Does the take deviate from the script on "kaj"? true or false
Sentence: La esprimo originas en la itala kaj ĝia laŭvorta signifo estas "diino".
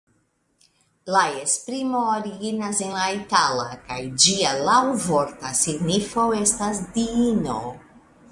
false